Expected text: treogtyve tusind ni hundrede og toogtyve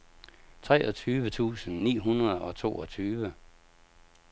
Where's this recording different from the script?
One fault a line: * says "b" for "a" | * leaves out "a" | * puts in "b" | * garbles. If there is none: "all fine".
all fine